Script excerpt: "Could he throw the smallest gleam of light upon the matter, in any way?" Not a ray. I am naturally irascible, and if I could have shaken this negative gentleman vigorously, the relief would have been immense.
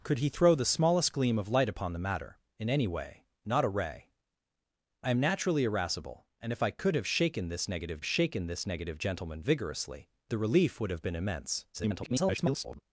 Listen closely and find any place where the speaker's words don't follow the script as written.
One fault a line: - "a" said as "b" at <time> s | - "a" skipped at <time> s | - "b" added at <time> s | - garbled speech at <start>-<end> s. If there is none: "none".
- "shaken this negative" added at 8.0 s
- garbled speech at 11.7-12.8 s